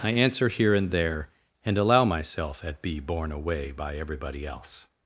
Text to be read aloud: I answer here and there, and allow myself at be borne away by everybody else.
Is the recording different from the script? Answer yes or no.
no